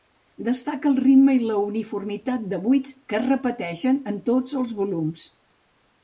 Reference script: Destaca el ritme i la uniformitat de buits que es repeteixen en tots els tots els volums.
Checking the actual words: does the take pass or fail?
fail